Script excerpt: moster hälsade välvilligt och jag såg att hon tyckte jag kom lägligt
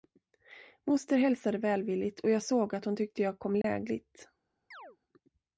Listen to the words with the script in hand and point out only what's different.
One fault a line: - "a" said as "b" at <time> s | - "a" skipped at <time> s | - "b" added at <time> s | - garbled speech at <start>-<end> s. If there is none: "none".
none